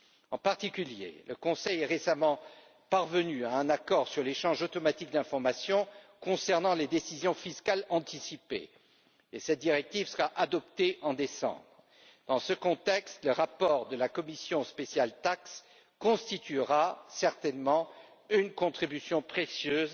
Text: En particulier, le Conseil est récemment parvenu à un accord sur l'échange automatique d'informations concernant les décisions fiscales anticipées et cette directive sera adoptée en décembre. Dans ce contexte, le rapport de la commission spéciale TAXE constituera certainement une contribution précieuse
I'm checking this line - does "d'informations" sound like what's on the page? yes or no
yes